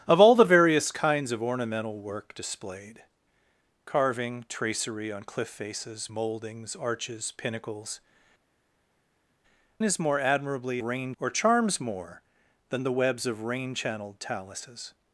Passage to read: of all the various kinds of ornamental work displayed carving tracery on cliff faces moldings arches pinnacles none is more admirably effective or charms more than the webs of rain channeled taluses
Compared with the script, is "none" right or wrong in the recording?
wrong